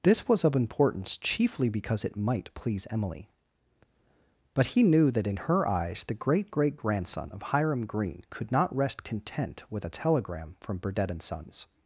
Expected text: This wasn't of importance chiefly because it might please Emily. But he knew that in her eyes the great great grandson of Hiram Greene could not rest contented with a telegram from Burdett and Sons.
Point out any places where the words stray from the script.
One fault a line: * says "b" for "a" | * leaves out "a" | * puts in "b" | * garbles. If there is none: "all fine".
* says "was" for "wasn't"
* says "content" for "contented"